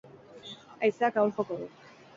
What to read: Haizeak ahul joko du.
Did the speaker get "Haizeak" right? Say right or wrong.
right